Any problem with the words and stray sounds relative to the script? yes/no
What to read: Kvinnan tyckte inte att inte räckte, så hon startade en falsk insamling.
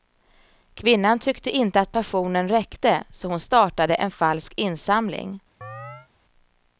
yes